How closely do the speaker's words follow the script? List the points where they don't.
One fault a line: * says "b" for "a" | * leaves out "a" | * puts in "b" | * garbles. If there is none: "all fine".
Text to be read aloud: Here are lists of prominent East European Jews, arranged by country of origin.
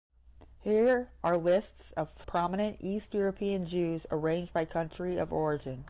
all fine